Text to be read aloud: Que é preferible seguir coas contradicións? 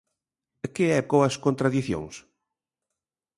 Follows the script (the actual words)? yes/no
no